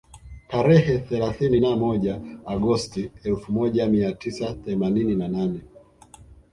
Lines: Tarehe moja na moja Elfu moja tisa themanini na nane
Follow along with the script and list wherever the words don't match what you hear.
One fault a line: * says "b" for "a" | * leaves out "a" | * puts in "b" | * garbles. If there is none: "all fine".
* says "thelathini" for "moja"
* puts in "Agosti"
* puts in "mia"